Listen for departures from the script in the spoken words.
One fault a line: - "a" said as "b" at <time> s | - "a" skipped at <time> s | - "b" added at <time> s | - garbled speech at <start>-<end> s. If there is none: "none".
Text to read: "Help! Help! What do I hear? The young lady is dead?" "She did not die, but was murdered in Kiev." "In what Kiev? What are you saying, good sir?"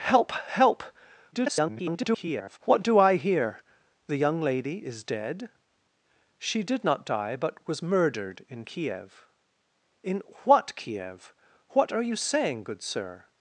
- garbled speech at 1.3-2.6 s